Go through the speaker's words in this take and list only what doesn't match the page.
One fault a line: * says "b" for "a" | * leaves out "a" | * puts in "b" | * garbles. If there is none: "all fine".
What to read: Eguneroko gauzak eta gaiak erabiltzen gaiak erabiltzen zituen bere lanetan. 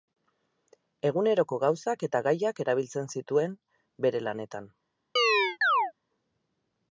* leaves out "gaiak erabiltzen"